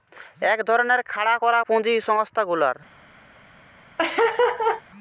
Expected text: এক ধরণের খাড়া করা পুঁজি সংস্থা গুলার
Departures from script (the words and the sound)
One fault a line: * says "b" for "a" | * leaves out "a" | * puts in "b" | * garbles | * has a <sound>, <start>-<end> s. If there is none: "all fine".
* has a laugh, 4.0-4.8 s